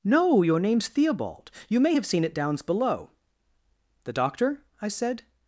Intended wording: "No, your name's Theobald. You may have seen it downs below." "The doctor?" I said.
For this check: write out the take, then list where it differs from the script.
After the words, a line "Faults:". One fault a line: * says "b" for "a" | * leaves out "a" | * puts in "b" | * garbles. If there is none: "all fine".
"No, your name's Theobald. You may have seen it downs below." "The doctor?" I said.
Faults:
all fine